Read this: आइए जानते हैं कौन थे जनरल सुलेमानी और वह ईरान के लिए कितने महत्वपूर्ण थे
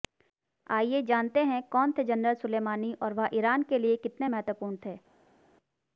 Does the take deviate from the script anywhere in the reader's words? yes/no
no